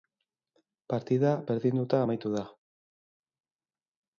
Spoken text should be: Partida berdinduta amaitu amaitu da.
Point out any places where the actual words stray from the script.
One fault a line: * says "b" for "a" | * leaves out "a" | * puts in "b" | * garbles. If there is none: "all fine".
* leaves out "amaitu"